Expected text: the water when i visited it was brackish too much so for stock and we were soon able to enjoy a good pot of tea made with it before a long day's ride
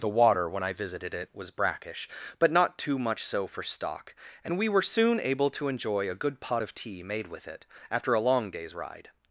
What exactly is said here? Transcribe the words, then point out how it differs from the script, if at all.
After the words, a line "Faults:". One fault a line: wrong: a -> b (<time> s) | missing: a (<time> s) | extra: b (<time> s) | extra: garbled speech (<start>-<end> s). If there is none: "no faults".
the water when i visited it was brackish but not too much so for stock and we were soon able to enjoy a good pot of tea made with it after a long day's ride
Faults:
extra: but not (2.4 s)
wrong: before -> after (7.9 s)